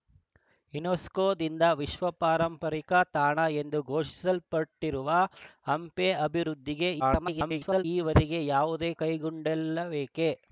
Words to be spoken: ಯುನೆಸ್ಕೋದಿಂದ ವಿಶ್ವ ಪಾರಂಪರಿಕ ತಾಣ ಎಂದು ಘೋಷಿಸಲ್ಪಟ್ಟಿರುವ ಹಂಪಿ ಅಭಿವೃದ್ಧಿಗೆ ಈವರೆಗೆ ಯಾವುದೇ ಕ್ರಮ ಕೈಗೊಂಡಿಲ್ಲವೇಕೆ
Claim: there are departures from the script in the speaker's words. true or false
true